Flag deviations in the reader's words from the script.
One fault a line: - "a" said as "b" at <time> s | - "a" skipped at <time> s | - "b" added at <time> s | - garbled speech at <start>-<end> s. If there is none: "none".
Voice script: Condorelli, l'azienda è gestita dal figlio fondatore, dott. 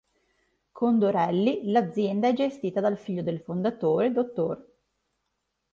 - "del" added at 3.2 s